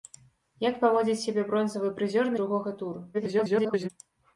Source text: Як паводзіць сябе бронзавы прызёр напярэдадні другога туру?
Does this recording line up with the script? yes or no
no